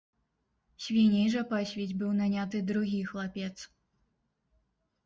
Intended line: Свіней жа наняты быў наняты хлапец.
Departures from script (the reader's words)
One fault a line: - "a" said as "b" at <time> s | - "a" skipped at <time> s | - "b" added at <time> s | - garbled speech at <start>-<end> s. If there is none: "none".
- "наняты" said as "пасвіць" at 1.5 s
- "другі" added at 2.7 s